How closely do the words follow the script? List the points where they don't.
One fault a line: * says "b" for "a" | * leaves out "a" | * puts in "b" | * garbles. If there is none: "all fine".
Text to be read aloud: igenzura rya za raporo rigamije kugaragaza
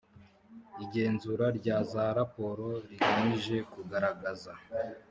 all fine